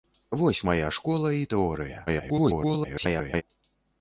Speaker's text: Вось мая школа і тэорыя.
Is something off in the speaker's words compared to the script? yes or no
yes